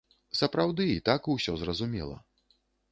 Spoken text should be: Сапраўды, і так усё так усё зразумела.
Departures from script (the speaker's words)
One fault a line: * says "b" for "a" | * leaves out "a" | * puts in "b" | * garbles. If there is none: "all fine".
* leaves out "так усё"